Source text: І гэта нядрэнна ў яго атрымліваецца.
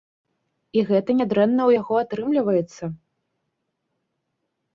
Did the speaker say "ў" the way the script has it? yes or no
yes